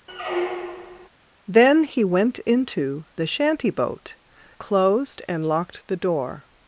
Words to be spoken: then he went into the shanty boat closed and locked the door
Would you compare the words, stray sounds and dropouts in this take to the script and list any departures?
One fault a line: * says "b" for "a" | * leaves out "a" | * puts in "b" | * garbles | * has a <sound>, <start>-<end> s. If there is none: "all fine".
* has a squeak, 0.1-1.1 s